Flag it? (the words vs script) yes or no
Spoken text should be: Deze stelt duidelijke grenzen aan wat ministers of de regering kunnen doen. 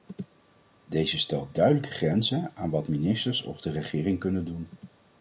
no